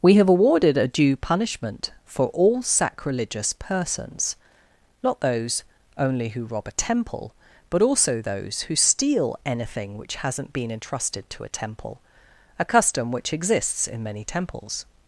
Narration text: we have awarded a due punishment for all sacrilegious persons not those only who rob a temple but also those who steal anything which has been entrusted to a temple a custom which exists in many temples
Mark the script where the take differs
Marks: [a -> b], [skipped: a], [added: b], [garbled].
we have awarded a due punishment for all sacrilegious persons not those only who rob a temple but also those who steal anything which [has -> hasn't] been entrusted to a temple a custom which exists in many temples